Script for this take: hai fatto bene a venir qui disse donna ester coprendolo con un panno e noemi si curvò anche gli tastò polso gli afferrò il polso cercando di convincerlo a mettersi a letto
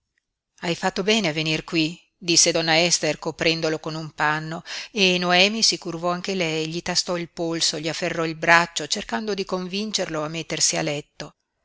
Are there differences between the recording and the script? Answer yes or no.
yes